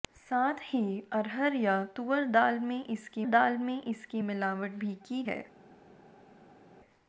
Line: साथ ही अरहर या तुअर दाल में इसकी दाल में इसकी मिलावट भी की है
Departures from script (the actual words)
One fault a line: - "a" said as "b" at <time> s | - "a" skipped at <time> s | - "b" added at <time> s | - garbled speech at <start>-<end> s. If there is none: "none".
none